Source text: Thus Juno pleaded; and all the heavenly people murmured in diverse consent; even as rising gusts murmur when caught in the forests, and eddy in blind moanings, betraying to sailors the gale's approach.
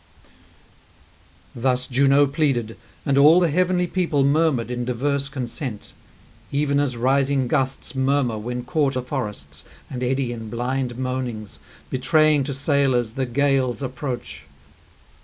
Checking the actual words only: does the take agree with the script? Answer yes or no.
no